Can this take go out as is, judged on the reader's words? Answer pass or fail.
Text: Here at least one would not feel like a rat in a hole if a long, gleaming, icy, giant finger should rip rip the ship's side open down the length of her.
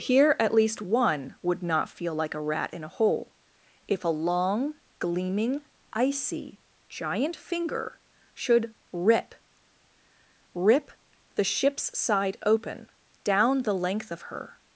pass